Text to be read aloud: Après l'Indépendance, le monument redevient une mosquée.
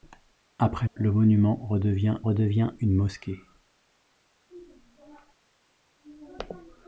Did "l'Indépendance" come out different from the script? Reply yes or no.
yes